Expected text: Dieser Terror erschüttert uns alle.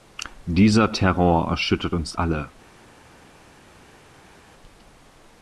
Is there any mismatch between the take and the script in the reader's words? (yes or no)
no